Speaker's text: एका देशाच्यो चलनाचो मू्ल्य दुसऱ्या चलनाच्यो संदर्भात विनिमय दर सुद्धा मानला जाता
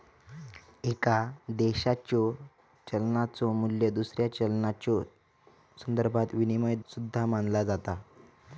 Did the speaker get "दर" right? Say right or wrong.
wrong